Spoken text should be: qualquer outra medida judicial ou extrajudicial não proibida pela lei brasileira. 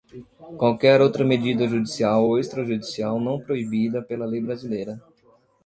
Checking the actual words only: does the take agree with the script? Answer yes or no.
yes